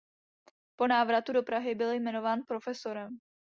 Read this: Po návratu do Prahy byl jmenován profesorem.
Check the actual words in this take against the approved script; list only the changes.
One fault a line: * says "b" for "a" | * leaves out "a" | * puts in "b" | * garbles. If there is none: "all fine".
all fine